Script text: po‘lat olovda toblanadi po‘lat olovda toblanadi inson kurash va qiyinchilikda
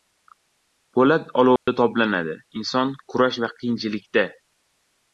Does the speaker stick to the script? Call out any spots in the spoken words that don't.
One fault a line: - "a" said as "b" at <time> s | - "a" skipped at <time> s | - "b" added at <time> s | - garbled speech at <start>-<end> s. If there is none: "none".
- "po‘lat olovda toblanadi" skipped at 2.4 s